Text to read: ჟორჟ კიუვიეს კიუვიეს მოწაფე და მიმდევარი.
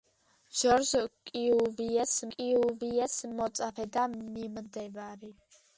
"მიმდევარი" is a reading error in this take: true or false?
false